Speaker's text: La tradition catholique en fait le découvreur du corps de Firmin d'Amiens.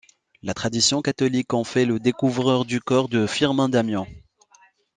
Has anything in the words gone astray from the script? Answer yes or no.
no